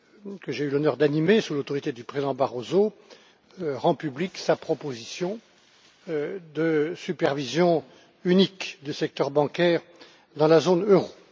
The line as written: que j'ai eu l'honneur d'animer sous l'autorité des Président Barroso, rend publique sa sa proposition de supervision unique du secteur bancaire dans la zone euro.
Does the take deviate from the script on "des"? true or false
true